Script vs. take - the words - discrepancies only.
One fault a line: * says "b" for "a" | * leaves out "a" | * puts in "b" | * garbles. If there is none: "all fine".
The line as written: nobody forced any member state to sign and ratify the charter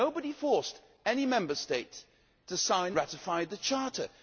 * leaves out "and"